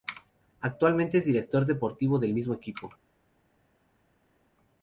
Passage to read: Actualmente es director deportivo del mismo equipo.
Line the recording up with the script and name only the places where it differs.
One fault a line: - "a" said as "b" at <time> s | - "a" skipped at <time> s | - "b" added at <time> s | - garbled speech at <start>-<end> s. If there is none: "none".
none